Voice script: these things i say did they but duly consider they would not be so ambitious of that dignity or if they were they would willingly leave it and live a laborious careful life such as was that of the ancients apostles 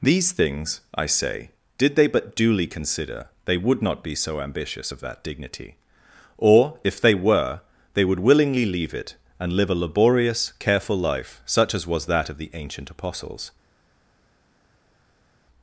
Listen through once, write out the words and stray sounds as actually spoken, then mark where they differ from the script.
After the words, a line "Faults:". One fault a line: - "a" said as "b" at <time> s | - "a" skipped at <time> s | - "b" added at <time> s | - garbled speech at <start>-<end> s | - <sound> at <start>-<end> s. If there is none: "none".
these things i say did they but duly consider they would not be so ambitious of that dignity or if they were they would willingly leave it and live a laborious careful life such as was that of the ancient apostles
Faults:
- "ancients" said as "ancient" at 12.5 s